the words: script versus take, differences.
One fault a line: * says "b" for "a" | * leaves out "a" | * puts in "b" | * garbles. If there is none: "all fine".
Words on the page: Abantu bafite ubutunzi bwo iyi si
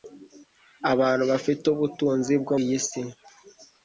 all fine